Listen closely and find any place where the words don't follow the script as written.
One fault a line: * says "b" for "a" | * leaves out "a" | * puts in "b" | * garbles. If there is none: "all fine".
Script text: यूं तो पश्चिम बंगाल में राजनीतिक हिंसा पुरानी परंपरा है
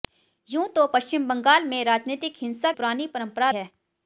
all fine